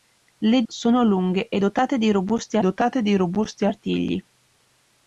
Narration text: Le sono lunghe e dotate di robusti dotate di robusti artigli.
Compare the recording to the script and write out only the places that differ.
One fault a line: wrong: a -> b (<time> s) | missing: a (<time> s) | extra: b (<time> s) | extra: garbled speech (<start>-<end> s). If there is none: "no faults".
no faults